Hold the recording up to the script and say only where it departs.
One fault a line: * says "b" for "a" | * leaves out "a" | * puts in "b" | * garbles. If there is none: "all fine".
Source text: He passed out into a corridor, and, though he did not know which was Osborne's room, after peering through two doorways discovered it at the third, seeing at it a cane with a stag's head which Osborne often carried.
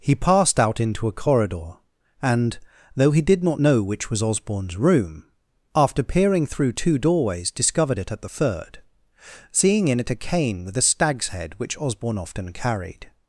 * says "in" for "at"